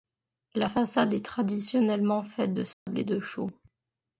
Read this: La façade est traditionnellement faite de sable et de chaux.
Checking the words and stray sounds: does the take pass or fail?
fail